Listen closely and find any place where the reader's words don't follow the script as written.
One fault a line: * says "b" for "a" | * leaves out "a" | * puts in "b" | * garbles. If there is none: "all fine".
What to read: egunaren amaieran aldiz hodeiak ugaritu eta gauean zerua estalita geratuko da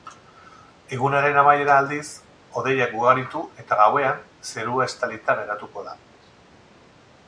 all fine